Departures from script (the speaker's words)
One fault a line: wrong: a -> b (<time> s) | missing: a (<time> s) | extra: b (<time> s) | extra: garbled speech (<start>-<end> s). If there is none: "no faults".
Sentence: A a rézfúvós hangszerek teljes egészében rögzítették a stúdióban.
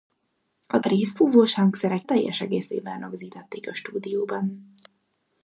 no faults